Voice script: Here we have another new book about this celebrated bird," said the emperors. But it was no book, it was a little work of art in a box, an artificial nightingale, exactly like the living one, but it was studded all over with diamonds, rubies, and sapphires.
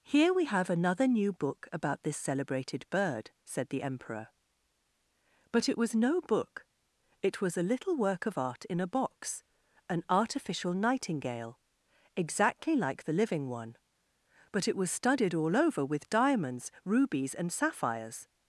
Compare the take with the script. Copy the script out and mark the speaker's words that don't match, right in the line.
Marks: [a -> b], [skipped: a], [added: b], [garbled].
Here we have another new book about this celebrated bird," said the [emperors. -> emperor] But it was no book, it was a little work of art in a box, an artificial nightingale, exactly like the living one, but it was studded all over with diamonds, rubies, and sapphires.